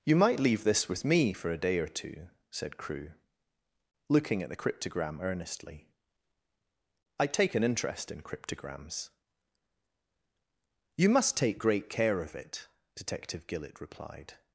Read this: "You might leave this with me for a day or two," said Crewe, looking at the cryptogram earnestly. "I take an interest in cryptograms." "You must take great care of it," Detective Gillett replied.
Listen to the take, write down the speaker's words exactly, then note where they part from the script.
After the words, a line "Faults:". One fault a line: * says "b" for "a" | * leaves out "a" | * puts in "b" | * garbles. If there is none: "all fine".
"You might leave this with me for a day or two," said Crewe, looking at the cryptogram earnestly. "I take an interest in cryptograms." "You must take great care of it," Detective Gillett replied.
Faults:
all fine